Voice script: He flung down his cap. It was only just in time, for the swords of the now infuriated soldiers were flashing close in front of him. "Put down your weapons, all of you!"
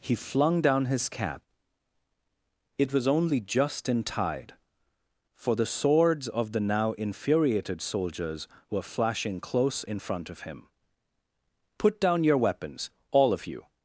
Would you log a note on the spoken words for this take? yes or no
yes